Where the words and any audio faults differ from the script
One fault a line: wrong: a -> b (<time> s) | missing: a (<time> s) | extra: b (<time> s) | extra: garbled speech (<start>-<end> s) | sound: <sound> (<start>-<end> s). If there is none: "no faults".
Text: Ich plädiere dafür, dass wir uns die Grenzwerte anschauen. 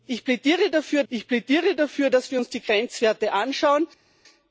extra: ich plädiere dafür (1.1 s)